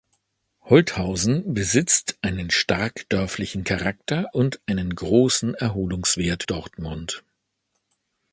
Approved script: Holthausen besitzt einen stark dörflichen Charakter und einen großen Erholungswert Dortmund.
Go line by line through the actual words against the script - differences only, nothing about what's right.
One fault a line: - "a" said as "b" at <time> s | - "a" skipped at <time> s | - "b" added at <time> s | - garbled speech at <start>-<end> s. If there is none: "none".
none